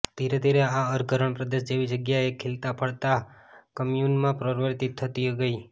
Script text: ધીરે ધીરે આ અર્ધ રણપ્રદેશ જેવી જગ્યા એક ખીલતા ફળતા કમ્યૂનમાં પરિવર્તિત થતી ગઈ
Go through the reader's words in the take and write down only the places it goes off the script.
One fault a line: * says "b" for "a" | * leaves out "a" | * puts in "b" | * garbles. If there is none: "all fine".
all fine